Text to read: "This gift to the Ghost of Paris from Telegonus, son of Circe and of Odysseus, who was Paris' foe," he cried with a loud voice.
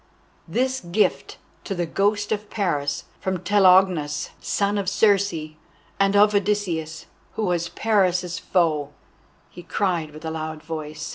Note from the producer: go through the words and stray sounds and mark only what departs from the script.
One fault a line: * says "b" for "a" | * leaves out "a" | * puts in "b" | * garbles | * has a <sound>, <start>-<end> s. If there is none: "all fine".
all fine